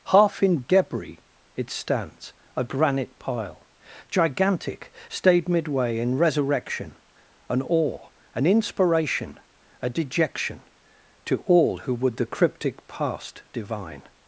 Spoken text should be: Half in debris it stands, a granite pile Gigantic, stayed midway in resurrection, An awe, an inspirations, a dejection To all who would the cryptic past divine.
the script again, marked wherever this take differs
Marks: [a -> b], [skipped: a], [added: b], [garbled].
Half in debris it stands, a granite pile Gigantic, stayed midway in resurrection, An awe, an [inspirations, -> inspiration] a dejection To all who would the cryptic past divine.